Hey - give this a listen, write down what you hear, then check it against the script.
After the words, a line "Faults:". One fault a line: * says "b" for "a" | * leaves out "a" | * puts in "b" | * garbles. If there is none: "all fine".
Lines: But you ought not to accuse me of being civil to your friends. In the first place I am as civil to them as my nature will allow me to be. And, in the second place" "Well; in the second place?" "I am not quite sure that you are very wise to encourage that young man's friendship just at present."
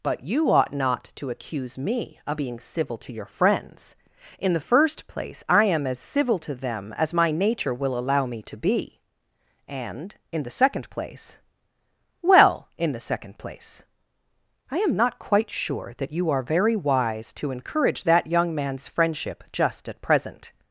But you ought not to accuse me of being civil to your friends. In the first place I am as civil to them as my nature will allow me to be. And, in the second place" "Well; in the second place?" "I am not quite sure that you are very wise to encourage that young man's friendship just at present."
Faults:
all fine